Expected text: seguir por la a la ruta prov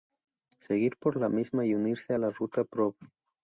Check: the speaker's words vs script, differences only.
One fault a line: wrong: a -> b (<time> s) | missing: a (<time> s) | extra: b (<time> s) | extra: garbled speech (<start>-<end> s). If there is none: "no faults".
extra: misma y unirse (1.3 s)